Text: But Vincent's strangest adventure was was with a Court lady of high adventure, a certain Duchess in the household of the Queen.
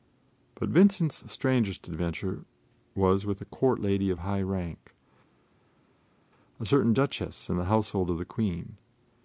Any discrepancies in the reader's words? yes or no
yes